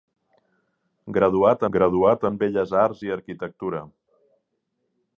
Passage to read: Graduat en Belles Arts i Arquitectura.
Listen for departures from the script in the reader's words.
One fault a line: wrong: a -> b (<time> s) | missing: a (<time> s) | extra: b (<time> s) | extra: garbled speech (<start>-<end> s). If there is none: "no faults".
extra: graduat (1.8 s)